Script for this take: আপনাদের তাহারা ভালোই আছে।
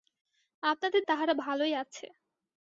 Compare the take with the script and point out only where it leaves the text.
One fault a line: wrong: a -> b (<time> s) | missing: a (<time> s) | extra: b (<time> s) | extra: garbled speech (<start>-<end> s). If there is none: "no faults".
no faults